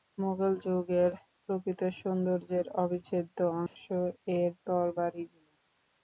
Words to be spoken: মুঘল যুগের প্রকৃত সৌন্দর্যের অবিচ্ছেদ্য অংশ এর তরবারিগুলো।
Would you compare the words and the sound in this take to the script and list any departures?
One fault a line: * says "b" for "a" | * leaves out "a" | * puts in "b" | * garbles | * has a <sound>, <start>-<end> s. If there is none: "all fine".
* has a dropout, 3.7-3.8 s